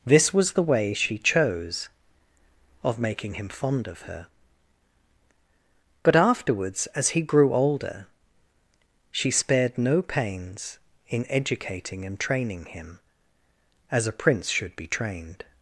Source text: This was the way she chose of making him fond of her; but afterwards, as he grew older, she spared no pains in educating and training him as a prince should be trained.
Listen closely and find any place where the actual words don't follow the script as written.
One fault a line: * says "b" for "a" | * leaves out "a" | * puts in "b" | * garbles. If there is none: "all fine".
all fine